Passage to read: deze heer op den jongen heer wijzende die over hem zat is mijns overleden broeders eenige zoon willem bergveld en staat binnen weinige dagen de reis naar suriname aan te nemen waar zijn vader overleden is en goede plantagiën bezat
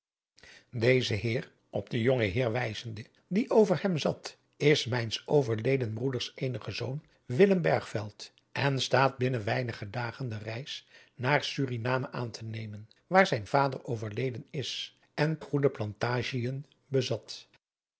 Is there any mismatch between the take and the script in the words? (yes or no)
no